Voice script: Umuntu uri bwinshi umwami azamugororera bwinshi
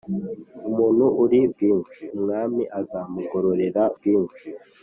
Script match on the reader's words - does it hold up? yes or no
yes